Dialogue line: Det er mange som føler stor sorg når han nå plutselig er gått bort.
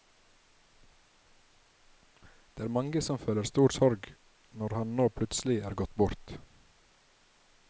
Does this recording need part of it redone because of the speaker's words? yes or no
no